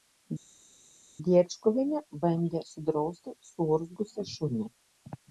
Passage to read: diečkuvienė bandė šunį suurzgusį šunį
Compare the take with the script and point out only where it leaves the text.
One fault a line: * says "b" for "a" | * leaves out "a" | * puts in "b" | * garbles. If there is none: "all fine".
* says "sudrausti" for "šunį"